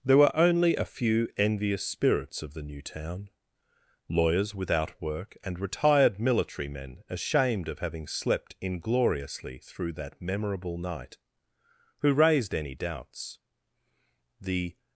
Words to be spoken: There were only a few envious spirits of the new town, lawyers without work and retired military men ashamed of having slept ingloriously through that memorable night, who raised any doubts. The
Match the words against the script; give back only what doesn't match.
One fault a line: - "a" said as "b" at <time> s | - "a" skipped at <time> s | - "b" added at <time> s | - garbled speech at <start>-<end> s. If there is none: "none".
none